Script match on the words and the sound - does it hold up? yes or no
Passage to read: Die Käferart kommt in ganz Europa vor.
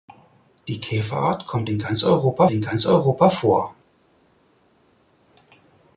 no